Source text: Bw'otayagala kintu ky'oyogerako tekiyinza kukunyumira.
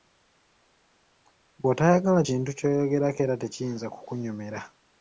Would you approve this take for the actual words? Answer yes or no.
no